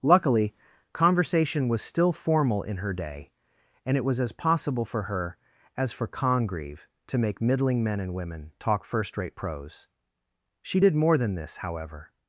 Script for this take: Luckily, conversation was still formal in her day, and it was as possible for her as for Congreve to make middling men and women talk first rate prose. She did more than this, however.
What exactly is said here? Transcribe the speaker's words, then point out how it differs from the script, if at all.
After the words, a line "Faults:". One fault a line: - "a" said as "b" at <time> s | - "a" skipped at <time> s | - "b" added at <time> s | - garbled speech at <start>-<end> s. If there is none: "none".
Luckily, conversation was still formal in her day, and it was as possible for her as for Congreve to make middling men and women talk first rate prose. She did more than this, however.
Faults:
none